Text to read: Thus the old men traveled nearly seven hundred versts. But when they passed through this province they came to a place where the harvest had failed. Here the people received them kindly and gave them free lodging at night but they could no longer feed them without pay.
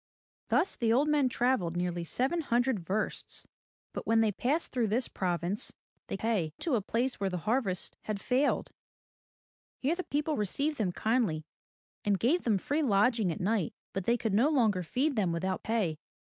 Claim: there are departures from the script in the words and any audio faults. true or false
true